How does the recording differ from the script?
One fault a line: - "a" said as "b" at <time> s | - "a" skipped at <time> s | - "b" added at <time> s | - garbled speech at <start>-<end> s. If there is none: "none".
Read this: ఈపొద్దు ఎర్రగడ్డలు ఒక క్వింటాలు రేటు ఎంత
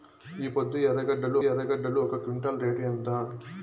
- "ఎర్రగడ్డలు" added at 1.4 s